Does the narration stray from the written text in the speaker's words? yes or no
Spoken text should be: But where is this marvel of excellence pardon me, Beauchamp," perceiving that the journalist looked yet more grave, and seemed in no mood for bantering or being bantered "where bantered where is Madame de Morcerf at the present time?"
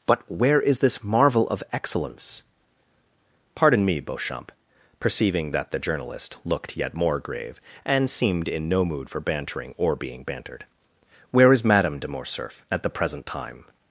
yes